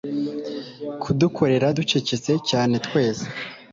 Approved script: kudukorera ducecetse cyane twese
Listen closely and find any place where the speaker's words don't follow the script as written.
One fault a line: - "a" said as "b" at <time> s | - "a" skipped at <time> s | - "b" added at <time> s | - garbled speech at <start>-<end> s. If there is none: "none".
none